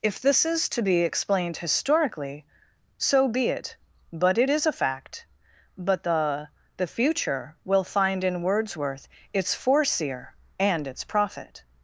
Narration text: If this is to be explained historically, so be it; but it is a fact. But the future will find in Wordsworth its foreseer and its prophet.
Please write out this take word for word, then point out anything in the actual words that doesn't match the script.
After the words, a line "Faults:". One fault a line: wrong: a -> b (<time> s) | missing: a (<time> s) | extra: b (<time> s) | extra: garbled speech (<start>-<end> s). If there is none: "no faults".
If this is to be explained historically, so be it; but it is a fact. But the the future will find in Wordsworth its foreseer and its prophet.
Faults:
extra: the (6.8 s)